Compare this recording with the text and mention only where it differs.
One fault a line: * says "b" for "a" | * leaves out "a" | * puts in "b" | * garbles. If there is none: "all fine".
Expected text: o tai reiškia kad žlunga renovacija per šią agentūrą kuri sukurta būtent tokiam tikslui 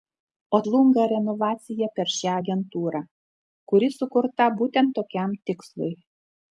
* leaves out "tai reiškia kad"